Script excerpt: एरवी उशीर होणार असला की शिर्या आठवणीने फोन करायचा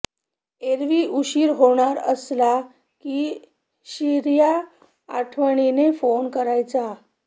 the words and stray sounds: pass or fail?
pass